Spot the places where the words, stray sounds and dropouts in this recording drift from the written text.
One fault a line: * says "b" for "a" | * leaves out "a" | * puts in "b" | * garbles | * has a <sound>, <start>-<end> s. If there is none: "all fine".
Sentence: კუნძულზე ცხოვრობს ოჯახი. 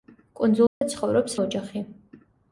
* has a dropout, 0.7-0.8 s